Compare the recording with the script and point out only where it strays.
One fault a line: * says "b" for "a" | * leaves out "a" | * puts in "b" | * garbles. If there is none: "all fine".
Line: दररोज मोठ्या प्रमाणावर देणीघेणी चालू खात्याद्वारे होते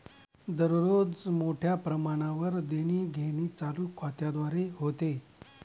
all fine